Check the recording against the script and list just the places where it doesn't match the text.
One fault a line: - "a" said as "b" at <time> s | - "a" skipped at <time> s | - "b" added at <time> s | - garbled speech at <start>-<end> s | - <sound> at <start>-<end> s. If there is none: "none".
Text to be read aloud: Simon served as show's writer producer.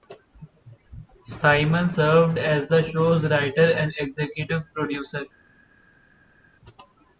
- "the" added at 2.7 s
- "and executive" added at 3.7 s